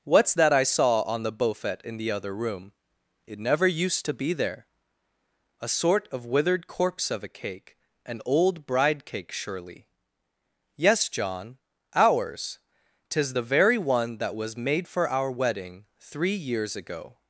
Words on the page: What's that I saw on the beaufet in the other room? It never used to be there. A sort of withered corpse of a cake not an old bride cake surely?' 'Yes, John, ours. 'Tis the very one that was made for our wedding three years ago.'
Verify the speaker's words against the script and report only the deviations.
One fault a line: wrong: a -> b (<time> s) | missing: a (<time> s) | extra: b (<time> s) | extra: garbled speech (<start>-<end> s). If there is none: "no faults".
missing: not (7.8 s)